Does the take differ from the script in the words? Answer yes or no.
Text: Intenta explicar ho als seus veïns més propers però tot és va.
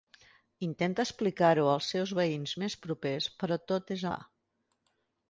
no